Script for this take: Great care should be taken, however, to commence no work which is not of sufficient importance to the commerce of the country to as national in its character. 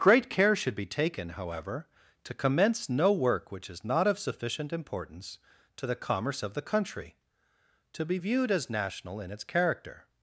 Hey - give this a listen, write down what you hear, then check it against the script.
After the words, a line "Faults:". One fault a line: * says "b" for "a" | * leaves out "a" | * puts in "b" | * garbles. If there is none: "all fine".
Great care should be taken, however, to commence no work which is not of sufficient importance to the commerce of the country to be viewed as national in its character.
Faults:
* puts in "be viewed"